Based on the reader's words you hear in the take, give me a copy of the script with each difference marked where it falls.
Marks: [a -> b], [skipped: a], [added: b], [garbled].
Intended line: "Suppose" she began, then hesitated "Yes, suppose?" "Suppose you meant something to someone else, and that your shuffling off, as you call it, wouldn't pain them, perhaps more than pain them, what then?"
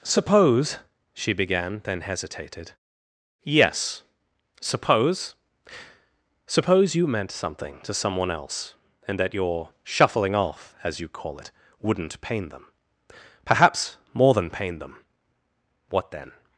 "Suppose" she began, then hesitated "Yes, suppose?" "Suppose you meant something to someone else, and that your shuffling off, as you call it, wouldn't pain them, perhaps more than pain them, what then?"